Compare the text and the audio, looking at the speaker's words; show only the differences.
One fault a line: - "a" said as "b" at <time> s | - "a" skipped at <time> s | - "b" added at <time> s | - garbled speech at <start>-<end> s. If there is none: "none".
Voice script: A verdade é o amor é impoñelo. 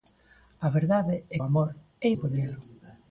none